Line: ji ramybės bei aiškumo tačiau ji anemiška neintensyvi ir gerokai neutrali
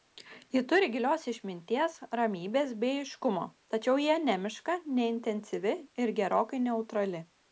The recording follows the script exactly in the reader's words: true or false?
false